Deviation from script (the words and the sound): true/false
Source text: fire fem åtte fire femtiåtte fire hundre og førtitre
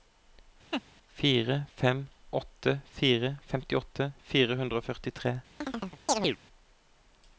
true